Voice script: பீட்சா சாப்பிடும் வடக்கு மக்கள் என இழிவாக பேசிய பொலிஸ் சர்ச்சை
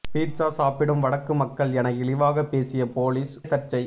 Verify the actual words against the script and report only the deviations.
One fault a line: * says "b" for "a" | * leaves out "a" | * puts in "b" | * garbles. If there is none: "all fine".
all fine